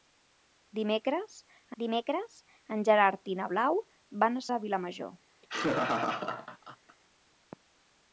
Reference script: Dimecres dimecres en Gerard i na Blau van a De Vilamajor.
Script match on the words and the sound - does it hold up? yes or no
no